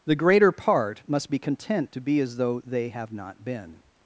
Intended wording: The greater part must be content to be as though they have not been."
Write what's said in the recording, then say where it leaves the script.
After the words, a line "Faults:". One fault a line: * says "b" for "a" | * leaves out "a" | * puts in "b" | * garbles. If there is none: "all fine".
The greater part must be content to be as though they have not been."
Faults:
all fine